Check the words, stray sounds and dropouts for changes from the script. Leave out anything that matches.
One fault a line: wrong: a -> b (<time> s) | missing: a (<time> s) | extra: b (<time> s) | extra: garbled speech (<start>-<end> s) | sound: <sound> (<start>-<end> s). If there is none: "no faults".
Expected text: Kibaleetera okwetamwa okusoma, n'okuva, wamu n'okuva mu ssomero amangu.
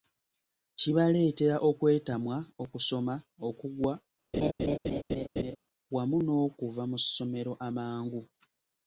wrong: n'okuva -> okugwa (3.5 s)
sound: laugh (4.3-5.6 s)